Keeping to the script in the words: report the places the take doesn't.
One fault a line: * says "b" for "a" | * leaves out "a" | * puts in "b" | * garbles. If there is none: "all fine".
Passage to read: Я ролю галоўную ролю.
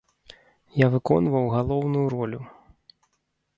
* says "выконваў" for "ролю"